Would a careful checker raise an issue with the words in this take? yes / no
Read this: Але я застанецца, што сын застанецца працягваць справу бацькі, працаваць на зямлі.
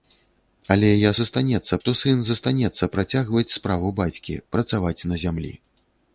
no